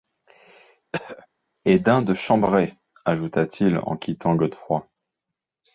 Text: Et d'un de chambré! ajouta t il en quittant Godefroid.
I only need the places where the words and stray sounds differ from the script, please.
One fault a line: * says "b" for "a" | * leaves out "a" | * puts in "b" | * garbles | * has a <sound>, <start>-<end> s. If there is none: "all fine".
* has a throat clearing, 0.9-1.3 s